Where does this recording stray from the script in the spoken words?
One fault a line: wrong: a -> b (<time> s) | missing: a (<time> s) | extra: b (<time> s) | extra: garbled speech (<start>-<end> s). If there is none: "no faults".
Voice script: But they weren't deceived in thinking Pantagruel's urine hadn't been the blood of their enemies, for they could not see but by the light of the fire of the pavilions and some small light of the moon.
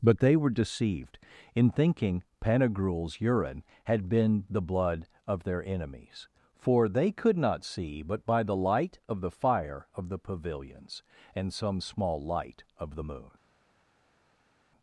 wrong: weren't -> were (0.3 s)
wrong: hadn't -> had (3.8 s)